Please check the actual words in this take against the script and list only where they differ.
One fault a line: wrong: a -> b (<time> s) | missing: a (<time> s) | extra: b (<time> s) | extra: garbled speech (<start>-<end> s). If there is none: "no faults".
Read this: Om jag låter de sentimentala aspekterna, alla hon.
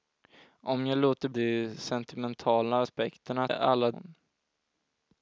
no faults